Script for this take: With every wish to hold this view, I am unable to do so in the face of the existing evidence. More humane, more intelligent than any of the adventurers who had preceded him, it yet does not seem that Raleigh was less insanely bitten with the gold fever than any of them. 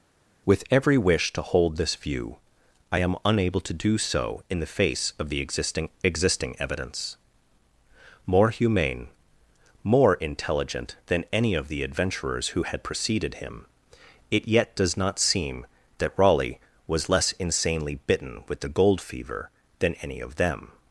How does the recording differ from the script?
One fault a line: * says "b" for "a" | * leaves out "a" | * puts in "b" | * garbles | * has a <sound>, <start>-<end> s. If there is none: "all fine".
* puts in "existing"